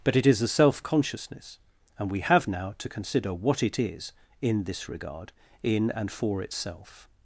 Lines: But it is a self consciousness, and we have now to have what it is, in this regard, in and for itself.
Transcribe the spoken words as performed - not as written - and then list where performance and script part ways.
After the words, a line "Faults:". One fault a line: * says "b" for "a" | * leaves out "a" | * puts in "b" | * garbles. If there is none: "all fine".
But it is a self consciousness, and we have now to consider what it is, in this regard, in and for itself.
Faults:
* says "consider" for "have"